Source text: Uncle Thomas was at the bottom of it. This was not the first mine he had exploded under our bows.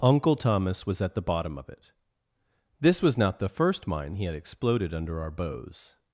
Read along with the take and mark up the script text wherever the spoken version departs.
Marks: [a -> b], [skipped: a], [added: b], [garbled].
Uncle Thomas was at the bottom of it. This was not the first mine he had exploded under our bows.